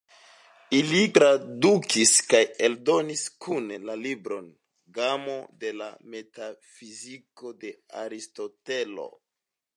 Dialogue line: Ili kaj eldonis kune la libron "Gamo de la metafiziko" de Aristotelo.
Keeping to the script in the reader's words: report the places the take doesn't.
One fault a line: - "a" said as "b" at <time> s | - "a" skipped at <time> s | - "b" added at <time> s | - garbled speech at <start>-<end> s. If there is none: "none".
- "tradukis" added at 1.1 s